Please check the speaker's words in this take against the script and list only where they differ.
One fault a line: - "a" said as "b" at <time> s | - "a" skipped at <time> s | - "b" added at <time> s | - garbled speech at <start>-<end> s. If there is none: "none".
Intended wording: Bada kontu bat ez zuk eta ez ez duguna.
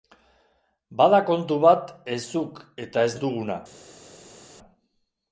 none